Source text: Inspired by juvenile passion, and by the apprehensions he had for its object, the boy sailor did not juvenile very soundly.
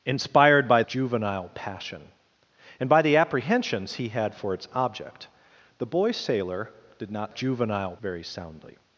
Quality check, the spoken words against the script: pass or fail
pass